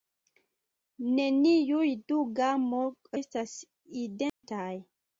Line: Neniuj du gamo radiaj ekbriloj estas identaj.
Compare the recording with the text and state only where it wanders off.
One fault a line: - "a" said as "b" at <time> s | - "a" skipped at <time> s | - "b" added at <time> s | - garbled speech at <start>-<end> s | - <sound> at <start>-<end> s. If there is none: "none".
- "radiaj ekbriloj" skipped at 2.8 s
- dropout at 4.3-4.4 s